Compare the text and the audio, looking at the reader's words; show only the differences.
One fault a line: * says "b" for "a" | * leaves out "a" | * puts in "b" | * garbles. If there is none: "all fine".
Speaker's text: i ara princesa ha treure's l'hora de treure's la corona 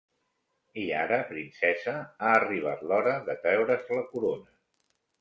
* says "arribat" for "treure's"